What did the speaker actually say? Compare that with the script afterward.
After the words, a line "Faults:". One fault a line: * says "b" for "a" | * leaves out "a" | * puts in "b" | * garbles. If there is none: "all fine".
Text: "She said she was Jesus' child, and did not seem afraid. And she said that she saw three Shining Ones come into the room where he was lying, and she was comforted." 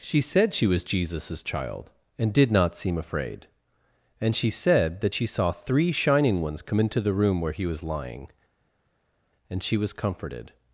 "She said she was Jesus' child, and did not seem afraid. And she said that she saw three Shining Ones come into the room where he was lying, and she was comforted."
Faults:
all fine